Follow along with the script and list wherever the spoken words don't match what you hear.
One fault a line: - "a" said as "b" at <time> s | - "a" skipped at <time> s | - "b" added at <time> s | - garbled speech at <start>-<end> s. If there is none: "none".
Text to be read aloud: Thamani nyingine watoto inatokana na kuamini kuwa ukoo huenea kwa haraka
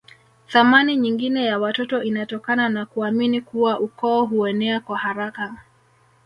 - "ya" added at 1.4 s